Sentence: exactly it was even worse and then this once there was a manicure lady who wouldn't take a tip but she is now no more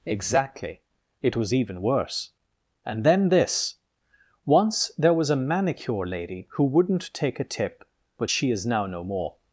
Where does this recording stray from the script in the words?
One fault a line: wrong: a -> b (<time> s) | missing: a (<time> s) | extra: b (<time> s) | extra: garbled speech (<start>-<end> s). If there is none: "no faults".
no faults